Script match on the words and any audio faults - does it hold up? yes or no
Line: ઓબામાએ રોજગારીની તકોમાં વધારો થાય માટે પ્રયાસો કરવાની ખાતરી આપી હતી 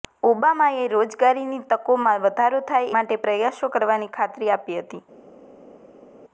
yes